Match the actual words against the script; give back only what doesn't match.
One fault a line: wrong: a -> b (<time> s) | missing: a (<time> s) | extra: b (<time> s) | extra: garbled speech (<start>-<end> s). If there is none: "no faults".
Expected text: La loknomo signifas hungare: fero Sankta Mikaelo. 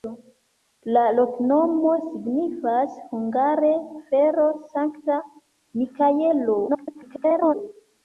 extra: garbled speech (6.7-7.5 s)